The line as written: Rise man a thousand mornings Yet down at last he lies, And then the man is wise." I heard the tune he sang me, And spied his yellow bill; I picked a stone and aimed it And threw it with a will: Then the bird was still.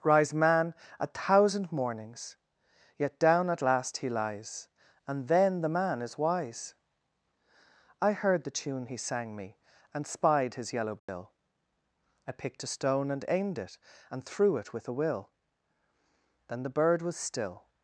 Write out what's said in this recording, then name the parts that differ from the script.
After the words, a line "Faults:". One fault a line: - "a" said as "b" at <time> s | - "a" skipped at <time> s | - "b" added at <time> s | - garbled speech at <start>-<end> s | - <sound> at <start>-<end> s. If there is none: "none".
Rise man a thousand mornings Yet down at last he lies, And then the man is wise." I heard the tune he sang me, And spied his yellow bill; I picked a stone and aimed it And threw it with a will: Then the bird was still.
Faults:
- dropout at 11.0-11.1 s